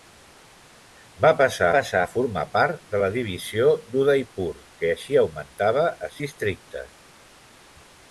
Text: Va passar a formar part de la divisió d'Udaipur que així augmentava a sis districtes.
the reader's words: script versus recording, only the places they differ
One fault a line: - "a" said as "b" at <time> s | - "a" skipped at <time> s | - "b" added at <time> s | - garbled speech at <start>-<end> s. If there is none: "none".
- "passar" added at 1.7 s
- "sis" skipped at 6.1 s